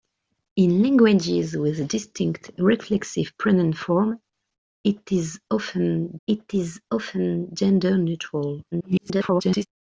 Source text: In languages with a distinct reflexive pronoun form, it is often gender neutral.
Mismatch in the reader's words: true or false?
true